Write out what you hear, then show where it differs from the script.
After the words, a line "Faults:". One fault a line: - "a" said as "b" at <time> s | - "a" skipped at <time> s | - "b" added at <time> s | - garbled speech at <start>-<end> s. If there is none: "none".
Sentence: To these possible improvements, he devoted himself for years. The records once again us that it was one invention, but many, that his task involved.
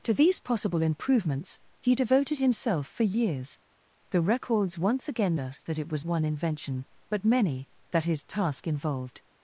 To these possible improvements, he devoted himself for years. The records once again us that it was one invention, but many, that his task involved.
Faults:
none